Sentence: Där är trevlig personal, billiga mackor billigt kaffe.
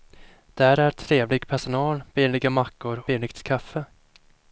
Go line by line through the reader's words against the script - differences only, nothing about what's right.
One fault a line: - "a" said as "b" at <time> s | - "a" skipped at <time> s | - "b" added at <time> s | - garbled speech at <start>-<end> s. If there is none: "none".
none